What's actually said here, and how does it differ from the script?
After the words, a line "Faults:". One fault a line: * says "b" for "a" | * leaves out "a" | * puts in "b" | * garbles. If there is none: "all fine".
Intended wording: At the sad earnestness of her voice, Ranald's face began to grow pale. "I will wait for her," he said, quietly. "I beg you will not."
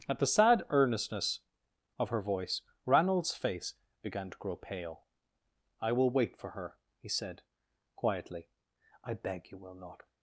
At the sad earnestness of her voice, Ranald's face began to grow pale. "I will wait for her," he said, quietly. "I beg you will not."
Faults:
all fine